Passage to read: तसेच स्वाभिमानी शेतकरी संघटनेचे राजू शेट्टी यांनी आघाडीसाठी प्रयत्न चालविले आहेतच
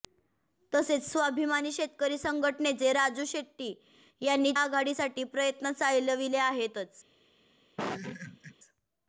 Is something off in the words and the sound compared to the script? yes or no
yes